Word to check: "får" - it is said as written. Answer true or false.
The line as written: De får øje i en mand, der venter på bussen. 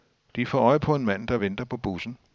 true